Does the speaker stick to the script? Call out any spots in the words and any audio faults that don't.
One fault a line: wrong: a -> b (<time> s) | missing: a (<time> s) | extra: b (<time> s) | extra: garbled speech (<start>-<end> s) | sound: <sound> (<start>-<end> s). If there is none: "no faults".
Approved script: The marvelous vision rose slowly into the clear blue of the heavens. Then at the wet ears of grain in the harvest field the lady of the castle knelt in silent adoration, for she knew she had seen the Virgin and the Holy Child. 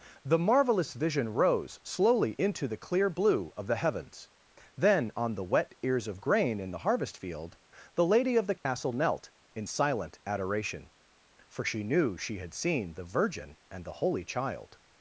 wrong: at -> on (5.2 s)
sound: dropout (8.6-8.7 s)